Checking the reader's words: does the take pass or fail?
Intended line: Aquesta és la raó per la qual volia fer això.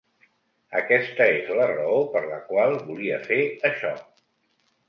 pass